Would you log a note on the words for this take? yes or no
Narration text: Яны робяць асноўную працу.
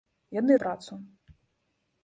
yes